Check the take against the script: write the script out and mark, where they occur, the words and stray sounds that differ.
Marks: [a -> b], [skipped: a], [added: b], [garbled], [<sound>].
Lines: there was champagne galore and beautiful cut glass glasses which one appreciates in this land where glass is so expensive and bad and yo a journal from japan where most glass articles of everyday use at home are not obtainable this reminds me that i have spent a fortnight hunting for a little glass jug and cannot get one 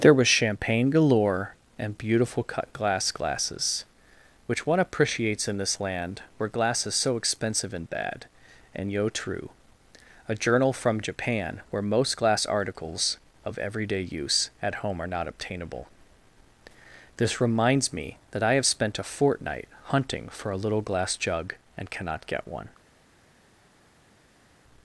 there was champagne galore and beautiful cut glass glasses which one appreciates in this land where glass is so expensive and bad and yo [added: true] a journal from japan where most glass articles of everyday use at home are not obtainable this reminds me that i have spent a fortnight hunting for a little glass jug and cannot get one